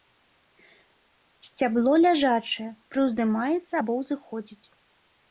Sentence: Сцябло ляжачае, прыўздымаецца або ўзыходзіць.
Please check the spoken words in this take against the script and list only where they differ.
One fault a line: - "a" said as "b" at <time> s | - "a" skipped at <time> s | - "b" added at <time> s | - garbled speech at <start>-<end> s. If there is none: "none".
none